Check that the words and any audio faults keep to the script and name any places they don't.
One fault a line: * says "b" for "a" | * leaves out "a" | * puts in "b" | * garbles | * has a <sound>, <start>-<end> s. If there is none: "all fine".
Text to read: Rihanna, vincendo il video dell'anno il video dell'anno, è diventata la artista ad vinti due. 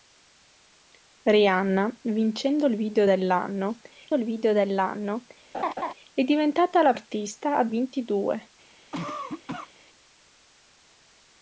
* has a laugh, 5.5-5.9 s
* has a cough, 8.9-9.7 s